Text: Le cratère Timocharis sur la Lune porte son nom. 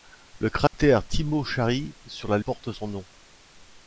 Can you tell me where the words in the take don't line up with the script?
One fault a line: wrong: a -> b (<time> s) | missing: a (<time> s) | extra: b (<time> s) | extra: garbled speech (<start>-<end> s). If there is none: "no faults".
missing: Lune (2.4 s)